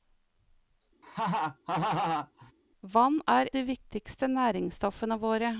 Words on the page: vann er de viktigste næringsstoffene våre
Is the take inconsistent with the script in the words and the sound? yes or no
yes